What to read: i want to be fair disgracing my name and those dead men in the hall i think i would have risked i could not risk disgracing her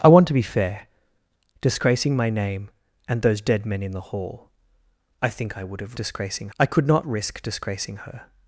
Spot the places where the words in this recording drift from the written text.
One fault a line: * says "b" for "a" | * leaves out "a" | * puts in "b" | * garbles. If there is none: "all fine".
* says "disgracing" for "risked"